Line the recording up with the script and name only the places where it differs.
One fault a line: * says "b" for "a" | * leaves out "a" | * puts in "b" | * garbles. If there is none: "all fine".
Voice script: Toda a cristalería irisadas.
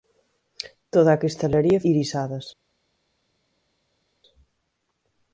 all fine